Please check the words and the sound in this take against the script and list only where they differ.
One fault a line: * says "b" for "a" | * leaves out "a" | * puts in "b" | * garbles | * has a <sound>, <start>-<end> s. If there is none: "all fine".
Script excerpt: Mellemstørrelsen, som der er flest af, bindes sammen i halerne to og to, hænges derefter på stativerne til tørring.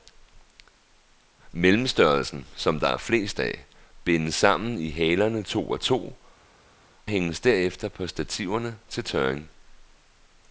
all fine